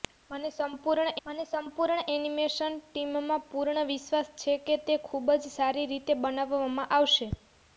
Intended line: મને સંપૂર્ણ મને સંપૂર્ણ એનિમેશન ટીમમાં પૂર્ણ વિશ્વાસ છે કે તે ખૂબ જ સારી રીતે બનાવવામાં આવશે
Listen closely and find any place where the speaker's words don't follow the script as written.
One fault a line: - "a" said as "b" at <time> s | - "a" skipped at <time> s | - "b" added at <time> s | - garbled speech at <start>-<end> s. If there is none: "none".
none